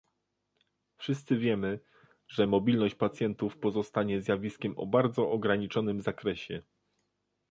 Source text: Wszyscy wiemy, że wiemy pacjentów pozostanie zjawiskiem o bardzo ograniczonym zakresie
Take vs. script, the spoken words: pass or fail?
fail